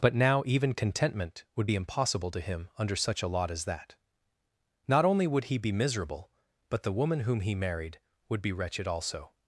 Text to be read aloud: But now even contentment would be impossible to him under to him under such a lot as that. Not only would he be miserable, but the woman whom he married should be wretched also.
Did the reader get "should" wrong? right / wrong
wrong